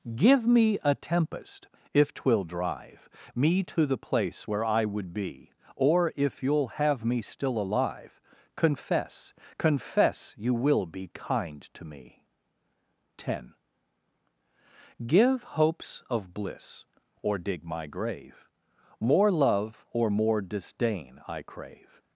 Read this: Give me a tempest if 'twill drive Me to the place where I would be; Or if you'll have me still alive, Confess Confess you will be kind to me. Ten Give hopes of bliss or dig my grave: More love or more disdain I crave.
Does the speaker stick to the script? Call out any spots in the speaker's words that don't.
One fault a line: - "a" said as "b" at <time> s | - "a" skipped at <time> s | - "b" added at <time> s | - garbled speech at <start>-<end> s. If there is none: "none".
none